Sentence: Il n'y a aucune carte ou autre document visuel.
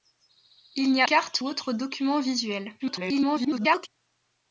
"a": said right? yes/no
no